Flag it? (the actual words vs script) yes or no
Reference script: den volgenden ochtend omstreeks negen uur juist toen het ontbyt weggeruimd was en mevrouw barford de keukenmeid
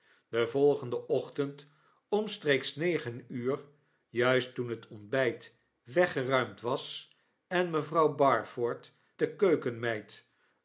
no